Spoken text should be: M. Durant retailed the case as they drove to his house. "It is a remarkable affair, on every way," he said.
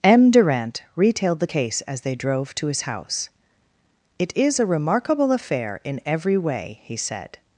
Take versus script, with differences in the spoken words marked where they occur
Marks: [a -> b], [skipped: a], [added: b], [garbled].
M. Durant retailed the case as they drove to his house. "It is a remarkable affair, [on -> in] every way," he said.